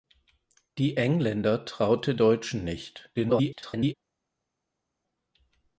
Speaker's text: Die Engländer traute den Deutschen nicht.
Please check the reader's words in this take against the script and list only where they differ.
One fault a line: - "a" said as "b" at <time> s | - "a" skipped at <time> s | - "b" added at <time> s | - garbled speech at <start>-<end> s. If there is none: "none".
- "den" skipped at 2.2 s
- garbled speech at 3.1-3.9 s